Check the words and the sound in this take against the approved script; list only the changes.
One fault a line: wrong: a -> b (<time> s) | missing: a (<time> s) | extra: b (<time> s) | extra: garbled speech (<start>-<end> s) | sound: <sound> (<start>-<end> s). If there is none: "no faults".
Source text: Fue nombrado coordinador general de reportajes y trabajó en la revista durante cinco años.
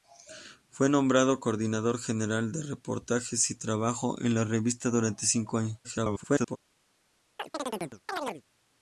extra: garbled speech (5.8-6.6 s)
sound: chirp (7.4-8.4 s)